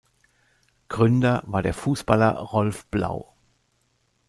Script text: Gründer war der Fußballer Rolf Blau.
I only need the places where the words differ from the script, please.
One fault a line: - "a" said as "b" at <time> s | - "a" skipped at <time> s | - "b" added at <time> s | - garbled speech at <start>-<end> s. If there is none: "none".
none